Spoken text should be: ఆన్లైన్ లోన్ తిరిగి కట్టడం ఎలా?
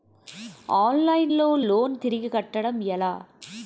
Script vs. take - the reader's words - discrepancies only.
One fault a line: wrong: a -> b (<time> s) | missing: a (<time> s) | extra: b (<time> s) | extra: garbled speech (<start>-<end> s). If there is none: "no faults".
extra: లో (1.3 s)